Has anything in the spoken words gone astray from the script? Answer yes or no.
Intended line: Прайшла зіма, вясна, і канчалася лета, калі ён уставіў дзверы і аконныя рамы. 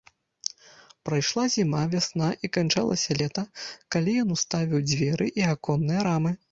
no